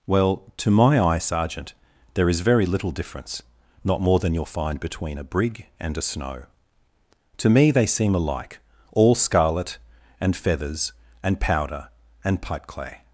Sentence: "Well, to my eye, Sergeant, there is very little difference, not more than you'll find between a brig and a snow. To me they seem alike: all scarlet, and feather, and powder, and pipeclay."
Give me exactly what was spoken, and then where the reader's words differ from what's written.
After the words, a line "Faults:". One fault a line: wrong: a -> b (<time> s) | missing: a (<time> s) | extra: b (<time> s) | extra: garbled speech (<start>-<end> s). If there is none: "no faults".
"Well, to my eye, Sergeant, there is very little difference, not more than you'll find between a brig and a snow. To me they seem alike: all scarlet, and feathers, and powder, and pipeclay."
Faults:
wrong: feather -> feathers (10.4 s)